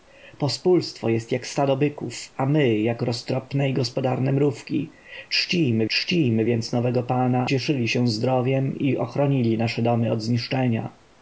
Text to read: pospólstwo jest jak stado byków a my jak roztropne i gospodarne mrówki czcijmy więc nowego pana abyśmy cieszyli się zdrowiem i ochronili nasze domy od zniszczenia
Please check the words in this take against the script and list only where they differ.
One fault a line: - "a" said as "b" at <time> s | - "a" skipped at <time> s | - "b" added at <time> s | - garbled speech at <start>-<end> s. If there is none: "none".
- "czcijmy" added at 5.9 s
- "abyśmy" skipped at 7.5 s